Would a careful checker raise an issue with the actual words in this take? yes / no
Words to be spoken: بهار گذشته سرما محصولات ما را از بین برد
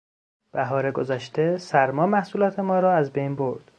no